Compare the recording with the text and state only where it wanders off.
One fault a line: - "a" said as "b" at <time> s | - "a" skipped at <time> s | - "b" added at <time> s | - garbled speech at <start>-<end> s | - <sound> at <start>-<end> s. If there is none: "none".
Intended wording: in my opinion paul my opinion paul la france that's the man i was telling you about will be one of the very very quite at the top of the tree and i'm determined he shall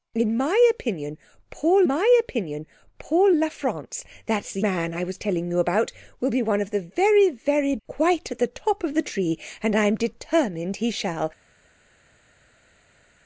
none